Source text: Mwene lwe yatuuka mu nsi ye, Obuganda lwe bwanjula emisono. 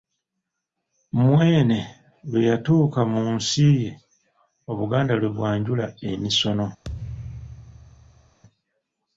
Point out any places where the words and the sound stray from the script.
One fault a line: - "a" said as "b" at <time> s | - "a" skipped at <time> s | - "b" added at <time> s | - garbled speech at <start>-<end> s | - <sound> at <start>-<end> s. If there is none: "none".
- thud at 6.8-8.4 s